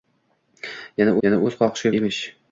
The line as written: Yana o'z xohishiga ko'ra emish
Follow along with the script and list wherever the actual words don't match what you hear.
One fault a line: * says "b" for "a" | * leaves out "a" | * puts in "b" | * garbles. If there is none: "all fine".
* puts in "yana"
* leaves out "ko'ra"